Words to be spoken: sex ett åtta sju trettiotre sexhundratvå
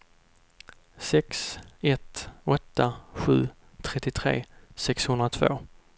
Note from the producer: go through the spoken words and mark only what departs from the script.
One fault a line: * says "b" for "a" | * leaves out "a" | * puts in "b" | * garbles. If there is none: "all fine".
all fine